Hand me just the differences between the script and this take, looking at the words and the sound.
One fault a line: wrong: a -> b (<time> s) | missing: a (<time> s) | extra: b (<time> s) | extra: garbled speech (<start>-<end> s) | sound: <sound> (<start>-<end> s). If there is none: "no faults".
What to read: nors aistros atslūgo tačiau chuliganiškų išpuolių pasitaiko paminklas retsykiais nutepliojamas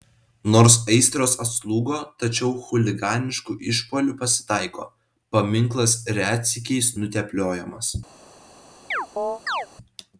sound: chirp (8.9-9.7 s)